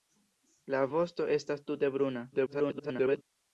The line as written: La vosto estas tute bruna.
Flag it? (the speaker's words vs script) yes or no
yes